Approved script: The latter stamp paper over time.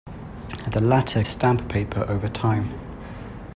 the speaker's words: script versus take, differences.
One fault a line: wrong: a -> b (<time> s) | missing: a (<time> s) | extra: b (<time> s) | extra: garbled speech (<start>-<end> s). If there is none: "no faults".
no faults